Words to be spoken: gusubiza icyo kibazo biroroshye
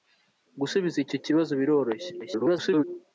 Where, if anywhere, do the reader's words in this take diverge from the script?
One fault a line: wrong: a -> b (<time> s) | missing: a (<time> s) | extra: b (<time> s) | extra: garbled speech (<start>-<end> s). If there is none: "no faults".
extra: garbled speech (2.2-2.8 s)